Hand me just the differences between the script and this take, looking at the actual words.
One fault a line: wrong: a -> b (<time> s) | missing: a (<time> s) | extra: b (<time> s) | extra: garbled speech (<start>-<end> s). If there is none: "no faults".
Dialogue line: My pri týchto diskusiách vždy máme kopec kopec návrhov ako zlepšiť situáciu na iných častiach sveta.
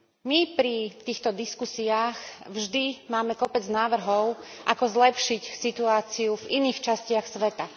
missing: kopec (3.6 s)
wrong: na -> v (6.3 s)